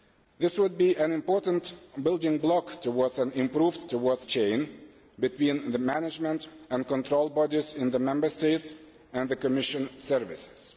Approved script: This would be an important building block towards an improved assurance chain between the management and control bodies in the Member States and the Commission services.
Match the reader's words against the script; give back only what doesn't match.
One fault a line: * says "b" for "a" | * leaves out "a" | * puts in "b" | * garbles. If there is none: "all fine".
* says "towards" for "assurance"